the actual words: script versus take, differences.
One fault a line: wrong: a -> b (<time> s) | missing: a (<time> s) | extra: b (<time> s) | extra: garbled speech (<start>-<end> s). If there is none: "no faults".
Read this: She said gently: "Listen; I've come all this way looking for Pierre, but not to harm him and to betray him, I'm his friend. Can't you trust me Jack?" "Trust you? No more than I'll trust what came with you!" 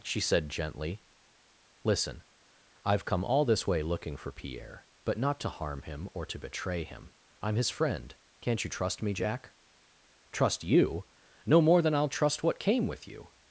wrong: and -> or (6.1 s)